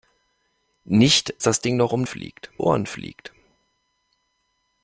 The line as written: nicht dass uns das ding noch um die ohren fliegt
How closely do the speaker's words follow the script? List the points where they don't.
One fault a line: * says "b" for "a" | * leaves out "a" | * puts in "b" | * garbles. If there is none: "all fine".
* leaves out "dass uns"
* says "fliegt" for "die"